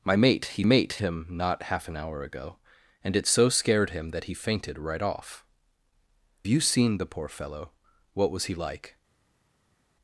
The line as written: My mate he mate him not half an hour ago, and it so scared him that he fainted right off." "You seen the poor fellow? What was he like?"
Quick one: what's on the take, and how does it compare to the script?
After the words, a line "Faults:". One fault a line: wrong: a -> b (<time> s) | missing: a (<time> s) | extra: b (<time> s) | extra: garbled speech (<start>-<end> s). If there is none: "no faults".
My mate he mate him not half an hour ago, and it so scared him that he fainted right off." "You seen the poor fellow? What was he like?"
Faults:
no faults